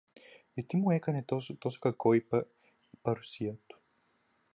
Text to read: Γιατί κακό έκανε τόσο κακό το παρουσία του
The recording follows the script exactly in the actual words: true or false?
false